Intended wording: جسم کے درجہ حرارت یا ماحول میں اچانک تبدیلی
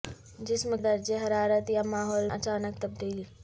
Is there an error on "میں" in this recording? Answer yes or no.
yes